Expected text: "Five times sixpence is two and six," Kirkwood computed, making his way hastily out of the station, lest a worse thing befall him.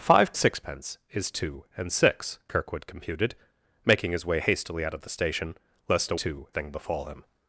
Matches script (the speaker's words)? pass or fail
fail